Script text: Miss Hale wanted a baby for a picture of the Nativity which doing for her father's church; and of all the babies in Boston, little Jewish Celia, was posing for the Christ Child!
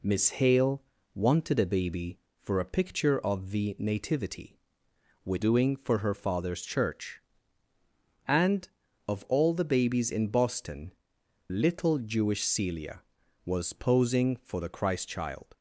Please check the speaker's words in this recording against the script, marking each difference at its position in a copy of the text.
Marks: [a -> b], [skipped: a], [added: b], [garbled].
Miss Hale wanted a baby for a picture of the Nativity which doing for her father's church; and of all the babies in Boston, little Jewish Celia, was posing for the Christ Child!